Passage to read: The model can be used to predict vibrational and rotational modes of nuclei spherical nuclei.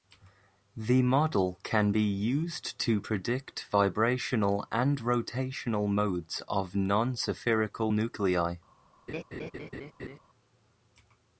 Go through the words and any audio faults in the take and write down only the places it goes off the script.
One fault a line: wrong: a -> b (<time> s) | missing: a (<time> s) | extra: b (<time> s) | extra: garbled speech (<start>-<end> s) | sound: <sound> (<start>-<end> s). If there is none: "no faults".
wrong: nuclei -> non (6.8 s)
sound: laugh (9.1-10.2 s)